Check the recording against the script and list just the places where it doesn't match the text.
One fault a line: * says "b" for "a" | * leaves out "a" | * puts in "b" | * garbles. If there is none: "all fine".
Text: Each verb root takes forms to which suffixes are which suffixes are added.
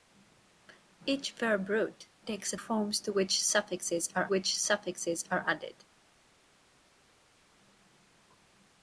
all fine